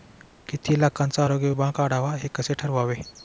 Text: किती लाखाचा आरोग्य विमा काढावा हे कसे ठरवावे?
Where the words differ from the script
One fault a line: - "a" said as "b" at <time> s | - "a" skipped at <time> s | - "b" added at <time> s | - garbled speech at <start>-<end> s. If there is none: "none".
none